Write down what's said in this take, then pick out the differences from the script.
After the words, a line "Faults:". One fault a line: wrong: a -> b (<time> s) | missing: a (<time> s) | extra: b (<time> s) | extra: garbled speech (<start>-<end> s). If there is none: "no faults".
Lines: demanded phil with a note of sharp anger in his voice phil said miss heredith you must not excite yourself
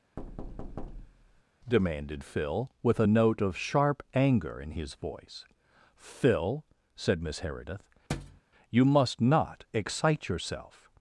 demanded phil with a note of sharp anger in his voice phil said miss heredith you must not excite yourself
Faults:
no faults